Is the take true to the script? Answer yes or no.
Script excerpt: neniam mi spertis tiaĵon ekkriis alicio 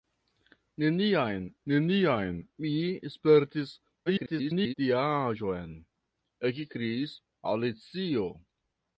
no